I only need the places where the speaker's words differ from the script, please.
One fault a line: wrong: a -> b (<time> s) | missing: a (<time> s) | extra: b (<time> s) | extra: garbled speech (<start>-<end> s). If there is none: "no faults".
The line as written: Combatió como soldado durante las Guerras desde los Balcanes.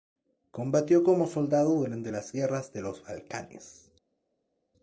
wrong: desde -> de (2.7 s)